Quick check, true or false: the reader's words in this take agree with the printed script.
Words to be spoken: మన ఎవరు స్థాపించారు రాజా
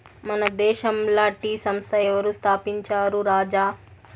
false